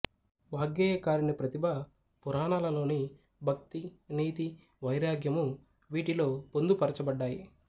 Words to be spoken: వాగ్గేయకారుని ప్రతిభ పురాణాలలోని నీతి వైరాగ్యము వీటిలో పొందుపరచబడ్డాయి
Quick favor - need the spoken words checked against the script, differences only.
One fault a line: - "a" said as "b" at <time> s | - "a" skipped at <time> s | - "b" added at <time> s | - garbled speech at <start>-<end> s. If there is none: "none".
- "భక్తి" added at 3.4 s